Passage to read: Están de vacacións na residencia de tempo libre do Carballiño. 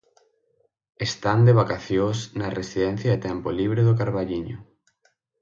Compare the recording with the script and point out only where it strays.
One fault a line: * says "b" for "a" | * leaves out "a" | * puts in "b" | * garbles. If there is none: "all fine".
all fine